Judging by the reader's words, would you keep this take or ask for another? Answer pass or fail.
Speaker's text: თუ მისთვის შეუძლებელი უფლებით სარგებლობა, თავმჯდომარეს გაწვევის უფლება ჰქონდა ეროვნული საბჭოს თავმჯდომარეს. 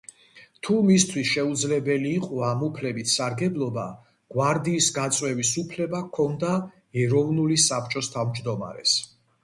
fail